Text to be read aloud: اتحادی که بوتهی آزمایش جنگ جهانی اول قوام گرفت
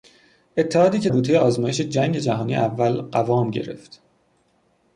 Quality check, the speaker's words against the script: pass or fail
pass